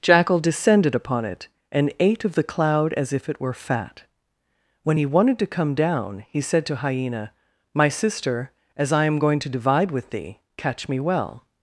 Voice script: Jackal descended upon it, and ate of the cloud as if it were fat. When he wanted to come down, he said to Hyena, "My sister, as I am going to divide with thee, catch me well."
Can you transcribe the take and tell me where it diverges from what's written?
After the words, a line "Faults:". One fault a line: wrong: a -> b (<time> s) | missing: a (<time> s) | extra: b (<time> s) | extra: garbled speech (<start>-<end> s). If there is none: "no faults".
Jackal descended upon it, and ate of the cloud as if it were fat. When he wanted to come down, he said to Hyena, "My sister, as I am going to divide with thee, catch me well."
Faults:
no faults